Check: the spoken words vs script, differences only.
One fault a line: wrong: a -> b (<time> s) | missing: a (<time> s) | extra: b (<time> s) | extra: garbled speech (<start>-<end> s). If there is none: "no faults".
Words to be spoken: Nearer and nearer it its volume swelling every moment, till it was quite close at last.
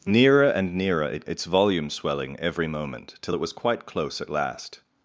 no faults